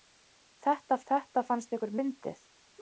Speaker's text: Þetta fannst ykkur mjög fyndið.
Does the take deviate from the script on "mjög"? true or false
true